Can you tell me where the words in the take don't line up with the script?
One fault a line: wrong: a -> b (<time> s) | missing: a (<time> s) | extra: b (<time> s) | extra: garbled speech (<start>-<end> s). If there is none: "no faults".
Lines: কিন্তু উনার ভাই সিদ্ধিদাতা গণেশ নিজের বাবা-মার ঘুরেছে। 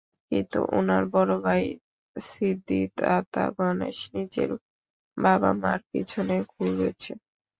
extra: বড় (1.1 s)
extra: পিছনে (5.9 s)